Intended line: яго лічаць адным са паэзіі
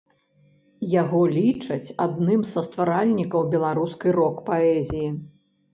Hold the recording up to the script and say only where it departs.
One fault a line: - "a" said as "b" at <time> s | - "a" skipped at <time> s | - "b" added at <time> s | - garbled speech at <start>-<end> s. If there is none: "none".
- "стваральнікаў беларускай рок" added at 2.7 s